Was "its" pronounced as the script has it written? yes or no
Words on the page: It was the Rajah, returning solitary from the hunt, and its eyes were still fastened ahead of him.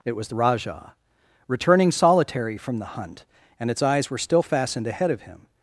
yes